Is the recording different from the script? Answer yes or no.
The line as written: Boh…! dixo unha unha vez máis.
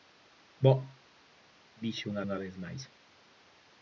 no